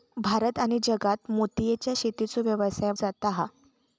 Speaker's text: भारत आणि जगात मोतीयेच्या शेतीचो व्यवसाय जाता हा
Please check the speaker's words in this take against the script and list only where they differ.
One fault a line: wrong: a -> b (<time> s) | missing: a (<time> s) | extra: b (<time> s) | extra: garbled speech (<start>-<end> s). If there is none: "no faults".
no faults